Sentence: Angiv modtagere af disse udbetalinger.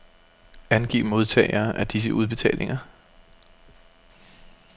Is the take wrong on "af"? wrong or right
right